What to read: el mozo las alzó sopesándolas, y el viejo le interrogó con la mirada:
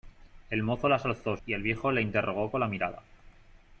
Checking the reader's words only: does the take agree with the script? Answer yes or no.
no